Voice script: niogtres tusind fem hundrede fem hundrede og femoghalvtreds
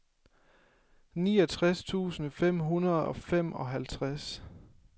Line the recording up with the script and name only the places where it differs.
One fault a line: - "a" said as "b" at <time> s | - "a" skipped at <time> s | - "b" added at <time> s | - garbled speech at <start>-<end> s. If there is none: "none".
- "fem hundrede" skipped at 3.0 s